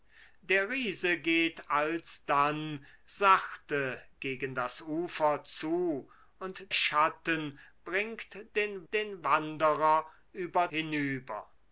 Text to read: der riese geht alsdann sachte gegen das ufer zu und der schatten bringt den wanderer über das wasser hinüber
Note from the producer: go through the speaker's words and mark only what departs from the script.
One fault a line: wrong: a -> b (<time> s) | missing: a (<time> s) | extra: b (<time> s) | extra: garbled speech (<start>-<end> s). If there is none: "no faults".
missing: der (6.7 s)
extra: den (8.9 s)
missing: das wasser (10.7 s)